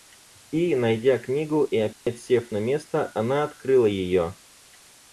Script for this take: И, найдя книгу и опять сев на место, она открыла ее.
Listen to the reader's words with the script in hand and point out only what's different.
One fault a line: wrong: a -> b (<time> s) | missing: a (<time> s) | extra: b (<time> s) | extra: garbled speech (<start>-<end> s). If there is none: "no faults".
no faults